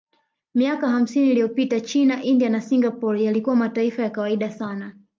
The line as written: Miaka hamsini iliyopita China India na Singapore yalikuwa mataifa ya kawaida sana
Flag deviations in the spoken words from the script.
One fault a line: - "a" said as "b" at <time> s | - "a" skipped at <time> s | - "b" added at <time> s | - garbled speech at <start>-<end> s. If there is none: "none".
none